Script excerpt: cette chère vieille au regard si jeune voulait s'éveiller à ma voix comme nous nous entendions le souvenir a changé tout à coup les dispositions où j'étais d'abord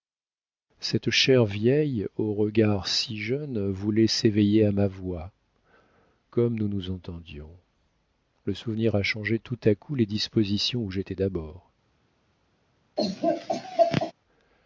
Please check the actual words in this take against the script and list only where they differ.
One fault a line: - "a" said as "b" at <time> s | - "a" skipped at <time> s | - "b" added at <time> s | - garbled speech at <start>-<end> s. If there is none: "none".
none